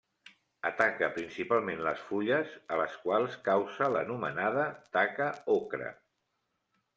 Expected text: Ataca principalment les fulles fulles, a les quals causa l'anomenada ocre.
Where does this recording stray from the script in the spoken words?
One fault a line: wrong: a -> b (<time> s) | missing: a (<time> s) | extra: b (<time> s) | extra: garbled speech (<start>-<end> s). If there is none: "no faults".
missing: fulles (2.5 s)
extra: taca (5.0 s)